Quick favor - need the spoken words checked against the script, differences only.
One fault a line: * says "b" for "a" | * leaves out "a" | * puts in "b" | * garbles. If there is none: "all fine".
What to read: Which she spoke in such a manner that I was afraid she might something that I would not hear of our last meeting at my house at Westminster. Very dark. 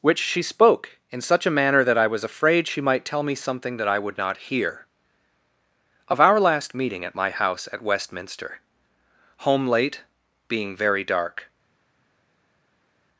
* puts in "tell me"
* puts in "Home late being"